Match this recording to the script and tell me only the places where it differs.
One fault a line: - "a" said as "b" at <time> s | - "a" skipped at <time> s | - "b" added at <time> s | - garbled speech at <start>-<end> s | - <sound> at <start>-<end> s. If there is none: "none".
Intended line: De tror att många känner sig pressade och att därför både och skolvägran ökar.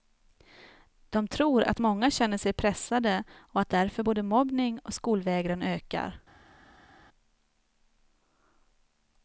- "mobbning" added at 4.2 s